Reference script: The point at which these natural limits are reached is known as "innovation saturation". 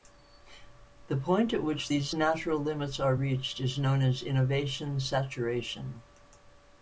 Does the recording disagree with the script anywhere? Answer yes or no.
no